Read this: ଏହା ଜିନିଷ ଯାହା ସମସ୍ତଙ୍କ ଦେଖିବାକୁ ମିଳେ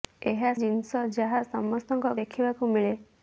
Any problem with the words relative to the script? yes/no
no